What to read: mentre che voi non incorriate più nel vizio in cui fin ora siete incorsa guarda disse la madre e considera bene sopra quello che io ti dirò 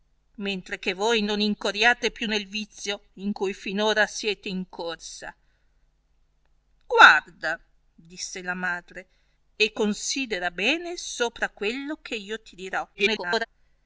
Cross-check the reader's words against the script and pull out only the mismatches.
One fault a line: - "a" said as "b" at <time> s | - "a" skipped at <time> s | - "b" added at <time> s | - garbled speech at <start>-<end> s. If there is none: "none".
- garbled speech at 12.9-13.5 s